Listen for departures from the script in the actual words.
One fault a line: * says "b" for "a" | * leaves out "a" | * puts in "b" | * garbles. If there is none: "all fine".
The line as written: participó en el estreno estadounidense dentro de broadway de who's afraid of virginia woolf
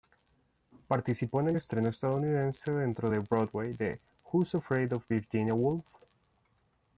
all fine